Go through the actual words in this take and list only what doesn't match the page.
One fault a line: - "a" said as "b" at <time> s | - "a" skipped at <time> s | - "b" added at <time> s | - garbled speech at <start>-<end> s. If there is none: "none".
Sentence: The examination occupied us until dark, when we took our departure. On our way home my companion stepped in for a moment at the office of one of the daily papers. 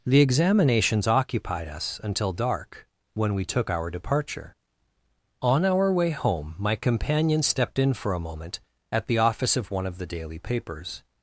- "examination" said as "examinations" at 0.2 s